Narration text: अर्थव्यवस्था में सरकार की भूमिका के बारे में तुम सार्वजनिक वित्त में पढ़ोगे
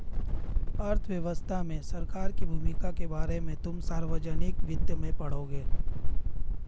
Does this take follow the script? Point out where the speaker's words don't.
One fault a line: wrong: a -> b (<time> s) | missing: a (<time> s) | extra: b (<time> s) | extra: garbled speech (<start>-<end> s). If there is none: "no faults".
no faults